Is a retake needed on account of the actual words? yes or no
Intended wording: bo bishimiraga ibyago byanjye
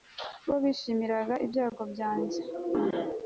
no